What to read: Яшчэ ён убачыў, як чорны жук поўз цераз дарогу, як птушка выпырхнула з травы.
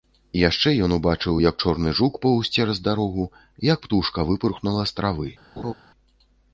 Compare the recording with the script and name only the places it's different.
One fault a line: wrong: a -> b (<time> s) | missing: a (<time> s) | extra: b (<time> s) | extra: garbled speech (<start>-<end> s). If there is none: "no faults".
no faults